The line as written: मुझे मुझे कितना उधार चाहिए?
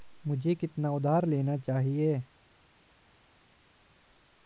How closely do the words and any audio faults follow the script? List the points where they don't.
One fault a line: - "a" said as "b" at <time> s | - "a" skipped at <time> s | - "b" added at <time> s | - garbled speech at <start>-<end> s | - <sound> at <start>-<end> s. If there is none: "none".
- "मुझे" skipped at 0.6 s
- "लेना" added at 1.2 s